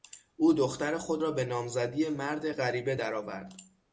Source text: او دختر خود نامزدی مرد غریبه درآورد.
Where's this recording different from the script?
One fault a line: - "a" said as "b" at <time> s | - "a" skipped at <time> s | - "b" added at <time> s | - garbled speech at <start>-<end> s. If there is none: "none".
- "را به" added at 1.2 s